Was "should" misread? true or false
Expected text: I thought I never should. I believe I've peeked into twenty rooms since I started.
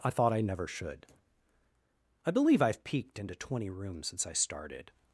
false